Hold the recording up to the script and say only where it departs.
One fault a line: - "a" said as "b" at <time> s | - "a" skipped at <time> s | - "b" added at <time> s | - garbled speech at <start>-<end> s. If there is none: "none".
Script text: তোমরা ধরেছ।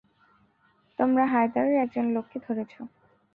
- "হায়দারের একজন লোককে" added at 1.2 s